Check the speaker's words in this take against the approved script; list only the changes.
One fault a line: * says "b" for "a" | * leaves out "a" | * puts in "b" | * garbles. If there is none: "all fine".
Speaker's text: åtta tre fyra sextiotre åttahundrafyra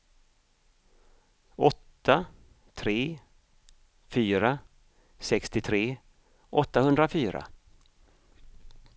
all fine